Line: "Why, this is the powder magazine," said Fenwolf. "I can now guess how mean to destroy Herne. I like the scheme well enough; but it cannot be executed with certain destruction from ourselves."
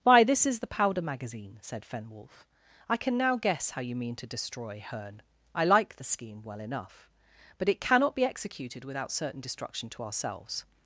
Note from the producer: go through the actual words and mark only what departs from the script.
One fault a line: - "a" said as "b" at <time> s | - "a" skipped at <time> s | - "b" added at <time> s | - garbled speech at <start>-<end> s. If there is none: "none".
- "you" added at 3.8 s
- "with" said as "without" at 8.8 s
- "from" said as "to" at 9.9 s